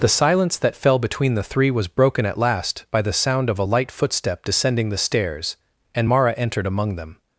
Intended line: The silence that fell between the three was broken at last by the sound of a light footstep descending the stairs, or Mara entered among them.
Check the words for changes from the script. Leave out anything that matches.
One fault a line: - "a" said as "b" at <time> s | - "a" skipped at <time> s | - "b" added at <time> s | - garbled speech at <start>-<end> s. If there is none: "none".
- "or" said as "and" at 5.9 s